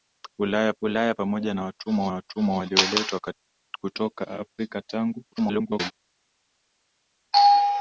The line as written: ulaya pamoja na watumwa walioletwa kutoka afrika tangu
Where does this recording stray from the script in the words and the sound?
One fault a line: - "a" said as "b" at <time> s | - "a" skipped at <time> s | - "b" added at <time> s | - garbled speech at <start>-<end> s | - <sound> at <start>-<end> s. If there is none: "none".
- "ulaya" added at 0.8 s
- "watumwa" added at 2.1 s
- garbled speech at 5.3-5.9 s